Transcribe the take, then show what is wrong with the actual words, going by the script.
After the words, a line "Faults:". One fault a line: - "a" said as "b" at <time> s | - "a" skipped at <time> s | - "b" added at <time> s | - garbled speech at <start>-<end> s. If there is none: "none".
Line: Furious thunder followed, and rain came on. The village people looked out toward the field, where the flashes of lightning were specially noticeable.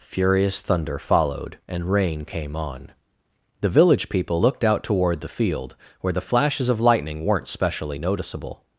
Furious thunder followed, and rain came on. The village people looked out toward the field, where the flashes of lightning weren't specially noticeable.
Faults:
- "were" said as "weren't" at 7.2 s